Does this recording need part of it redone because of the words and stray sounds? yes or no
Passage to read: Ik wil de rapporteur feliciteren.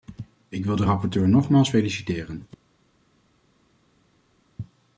yes